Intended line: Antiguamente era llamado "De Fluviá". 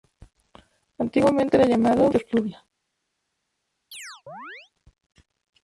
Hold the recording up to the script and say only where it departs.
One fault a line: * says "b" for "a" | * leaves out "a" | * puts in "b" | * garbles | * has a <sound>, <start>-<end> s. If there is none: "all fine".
* has a chirp, 3.9-4.7 s